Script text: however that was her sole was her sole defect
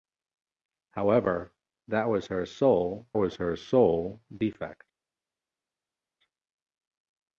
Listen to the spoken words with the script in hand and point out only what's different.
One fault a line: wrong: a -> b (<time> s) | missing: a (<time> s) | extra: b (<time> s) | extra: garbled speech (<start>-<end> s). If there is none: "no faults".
no faults